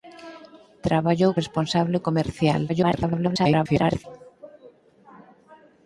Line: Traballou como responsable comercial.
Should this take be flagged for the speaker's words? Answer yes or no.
yes